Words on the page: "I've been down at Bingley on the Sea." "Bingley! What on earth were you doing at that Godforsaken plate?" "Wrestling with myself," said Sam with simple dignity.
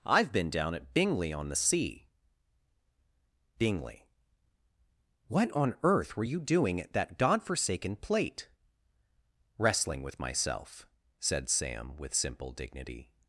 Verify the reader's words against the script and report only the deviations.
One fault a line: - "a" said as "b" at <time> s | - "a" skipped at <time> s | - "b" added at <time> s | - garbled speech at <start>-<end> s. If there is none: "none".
none